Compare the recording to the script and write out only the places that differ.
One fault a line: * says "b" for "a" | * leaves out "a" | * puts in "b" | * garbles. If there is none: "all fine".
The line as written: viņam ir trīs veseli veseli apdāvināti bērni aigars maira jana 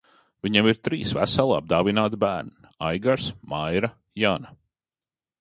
* leaves out "veseli"